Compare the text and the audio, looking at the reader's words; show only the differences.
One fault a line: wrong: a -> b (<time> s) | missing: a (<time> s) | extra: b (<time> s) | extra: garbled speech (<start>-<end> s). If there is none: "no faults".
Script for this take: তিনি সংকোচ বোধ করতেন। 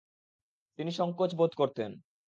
no faults